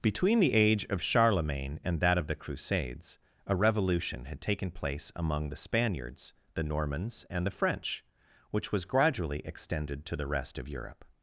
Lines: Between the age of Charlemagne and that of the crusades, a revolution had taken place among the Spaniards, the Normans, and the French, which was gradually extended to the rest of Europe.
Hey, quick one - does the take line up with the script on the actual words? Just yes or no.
yes